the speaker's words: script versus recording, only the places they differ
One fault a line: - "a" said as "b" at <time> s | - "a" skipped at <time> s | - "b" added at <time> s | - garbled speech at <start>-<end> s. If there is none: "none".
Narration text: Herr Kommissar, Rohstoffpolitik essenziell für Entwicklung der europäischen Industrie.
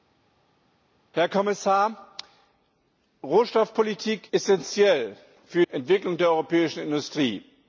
none